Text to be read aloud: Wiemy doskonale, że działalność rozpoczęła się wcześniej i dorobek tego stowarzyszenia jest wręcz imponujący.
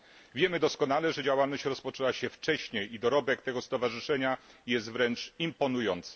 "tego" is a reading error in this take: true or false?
false